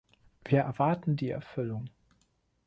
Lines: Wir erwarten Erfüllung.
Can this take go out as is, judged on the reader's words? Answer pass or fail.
fail